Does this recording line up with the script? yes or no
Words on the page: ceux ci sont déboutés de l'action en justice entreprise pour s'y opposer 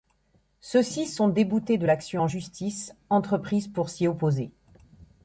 yes